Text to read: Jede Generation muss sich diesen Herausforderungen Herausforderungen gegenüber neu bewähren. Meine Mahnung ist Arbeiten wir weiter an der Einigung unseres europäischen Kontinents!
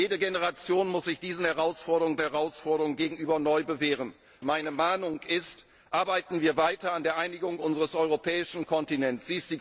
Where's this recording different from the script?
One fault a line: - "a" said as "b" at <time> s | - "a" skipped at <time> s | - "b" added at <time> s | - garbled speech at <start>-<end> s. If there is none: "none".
none